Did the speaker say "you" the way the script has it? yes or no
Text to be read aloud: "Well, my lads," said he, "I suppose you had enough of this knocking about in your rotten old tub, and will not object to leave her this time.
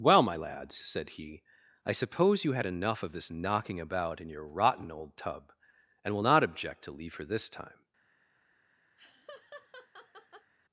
yes